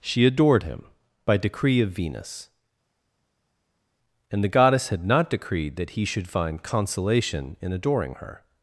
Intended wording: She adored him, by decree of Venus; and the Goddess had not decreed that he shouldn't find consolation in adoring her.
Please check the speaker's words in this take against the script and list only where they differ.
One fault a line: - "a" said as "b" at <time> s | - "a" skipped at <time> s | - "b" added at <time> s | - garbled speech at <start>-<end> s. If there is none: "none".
- "shouldn't" said as "should" at 6.1 s